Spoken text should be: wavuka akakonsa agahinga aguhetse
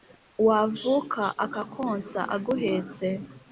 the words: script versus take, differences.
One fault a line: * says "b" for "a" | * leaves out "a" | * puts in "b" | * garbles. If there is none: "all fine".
* leaves out "agahinga"